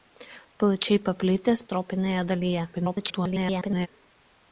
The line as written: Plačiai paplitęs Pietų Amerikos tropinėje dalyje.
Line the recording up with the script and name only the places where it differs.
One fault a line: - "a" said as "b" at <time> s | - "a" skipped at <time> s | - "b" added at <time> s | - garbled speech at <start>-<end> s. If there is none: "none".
- "Pietų Amerikos" skipped at 1.6 s
- garbled speech at 2.7-3.9 s